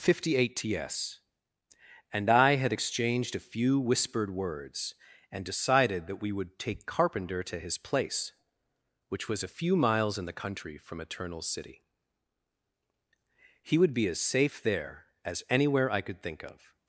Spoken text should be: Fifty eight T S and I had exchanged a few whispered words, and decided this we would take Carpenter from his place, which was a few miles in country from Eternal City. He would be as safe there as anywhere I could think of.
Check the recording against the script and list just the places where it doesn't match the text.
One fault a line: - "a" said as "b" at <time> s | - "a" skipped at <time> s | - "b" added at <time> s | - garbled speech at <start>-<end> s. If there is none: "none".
- "this" said as "that" at 6.1 s
- "from" said as "to" at 7.4 s
- "the" added at 10.2 s